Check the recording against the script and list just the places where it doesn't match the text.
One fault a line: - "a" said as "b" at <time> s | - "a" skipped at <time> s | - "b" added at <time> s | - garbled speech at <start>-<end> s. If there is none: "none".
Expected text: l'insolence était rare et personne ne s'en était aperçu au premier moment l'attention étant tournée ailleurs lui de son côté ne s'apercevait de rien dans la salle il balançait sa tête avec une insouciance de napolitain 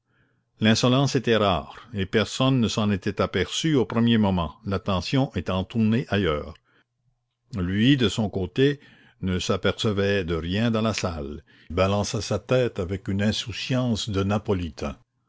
- "il" skipped at 11.4 s